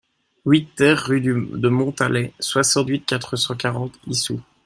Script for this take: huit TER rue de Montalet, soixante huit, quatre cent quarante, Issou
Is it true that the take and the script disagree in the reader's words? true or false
false